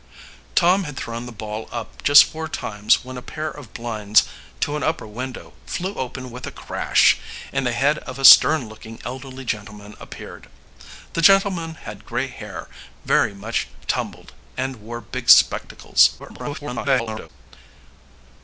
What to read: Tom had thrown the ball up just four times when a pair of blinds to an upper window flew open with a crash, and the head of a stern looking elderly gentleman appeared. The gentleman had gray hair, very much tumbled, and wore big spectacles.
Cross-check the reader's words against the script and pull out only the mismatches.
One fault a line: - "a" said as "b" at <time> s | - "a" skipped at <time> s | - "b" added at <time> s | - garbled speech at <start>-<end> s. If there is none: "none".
- garbled speech at 16.2-17.3 s